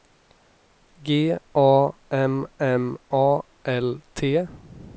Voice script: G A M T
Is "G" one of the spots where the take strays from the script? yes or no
no